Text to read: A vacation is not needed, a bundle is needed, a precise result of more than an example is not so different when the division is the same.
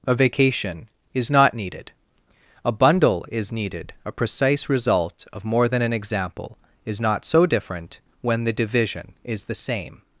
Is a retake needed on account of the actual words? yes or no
no